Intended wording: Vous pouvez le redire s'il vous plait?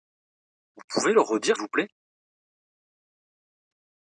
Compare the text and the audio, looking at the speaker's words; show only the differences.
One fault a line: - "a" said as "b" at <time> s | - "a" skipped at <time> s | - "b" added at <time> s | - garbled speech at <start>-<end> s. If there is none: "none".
- "s'il" skipped at 1.6 s